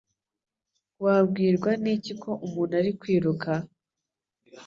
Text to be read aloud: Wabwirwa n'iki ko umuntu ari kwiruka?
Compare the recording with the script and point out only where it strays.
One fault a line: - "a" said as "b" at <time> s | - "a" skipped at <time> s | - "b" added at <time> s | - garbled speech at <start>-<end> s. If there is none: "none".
none